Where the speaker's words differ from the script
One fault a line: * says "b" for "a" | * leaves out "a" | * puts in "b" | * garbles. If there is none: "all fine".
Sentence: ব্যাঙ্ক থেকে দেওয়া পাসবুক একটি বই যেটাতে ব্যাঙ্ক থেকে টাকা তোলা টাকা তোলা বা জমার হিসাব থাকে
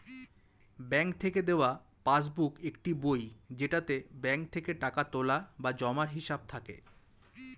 * leaves out "টাকা তোলা"